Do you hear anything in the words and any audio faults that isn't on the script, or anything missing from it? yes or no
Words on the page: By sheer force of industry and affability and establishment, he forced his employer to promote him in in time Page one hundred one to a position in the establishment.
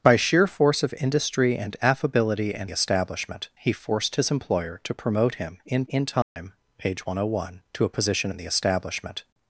yes